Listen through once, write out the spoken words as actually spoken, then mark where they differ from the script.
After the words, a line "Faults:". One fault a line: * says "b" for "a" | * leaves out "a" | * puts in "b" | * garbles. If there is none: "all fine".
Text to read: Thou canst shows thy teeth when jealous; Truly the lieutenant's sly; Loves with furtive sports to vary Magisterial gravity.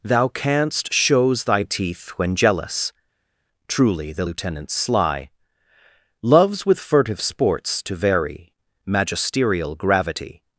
Thou canst shows thy teeth when jealous; Truly the lieutenant's sly; Loves with furtive sports to vary Magisterial gravity.
Faults:
all fine